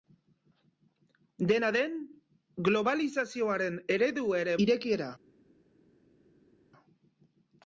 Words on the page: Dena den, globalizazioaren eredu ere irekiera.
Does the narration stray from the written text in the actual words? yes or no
no